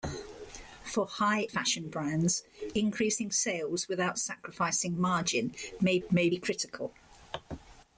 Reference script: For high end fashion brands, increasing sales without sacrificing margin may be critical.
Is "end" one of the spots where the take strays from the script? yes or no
yes